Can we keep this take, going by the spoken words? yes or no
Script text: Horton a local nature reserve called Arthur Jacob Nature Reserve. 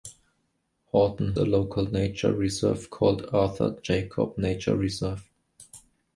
yes